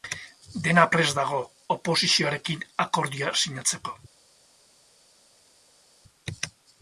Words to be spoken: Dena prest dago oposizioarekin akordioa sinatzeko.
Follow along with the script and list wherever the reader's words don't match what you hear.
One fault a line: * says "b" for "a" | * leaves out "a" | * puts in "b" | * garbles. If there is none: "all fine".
all fine